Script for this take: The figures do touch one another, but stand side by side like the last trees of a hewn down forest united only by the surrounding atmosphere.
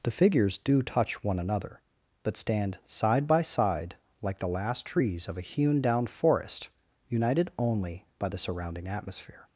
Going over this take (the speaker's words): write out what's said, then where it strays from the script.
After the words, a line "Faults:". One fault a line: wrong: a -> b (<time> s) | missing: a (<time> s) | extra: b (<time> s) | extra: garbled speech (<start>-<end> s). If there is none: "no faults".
The figures do touch one another, but stand side by side like the last trees of a hewn down forest united only by the surrounding atmosphere.
Faults:
no faults